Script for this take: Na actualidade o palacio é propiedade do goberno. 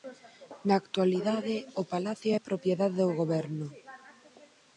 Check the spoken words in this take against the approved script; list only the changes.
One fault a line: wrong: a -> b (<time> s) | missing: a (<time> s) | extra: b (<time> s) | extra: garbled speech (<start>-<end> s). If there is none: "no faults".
no faults